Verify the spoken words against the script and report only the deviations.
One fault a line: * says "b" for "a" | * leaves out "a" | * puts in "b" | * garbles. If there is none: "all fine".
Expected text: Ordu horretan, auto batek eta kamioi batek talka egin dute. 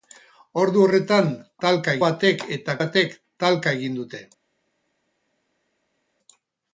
* says "talka" for "auto"
* leaves out "kamioi"